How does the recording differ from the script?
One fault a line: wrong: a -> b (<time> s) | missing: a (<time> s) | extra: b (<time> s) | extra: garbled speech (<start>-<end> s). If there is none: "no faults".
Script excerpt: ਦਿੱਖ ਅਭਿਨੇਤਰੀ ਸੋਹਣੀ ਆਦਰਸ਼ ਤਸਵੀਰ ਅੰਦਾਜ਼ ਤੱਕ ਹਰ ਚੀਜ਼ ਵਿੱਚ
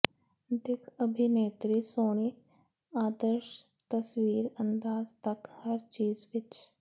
no faults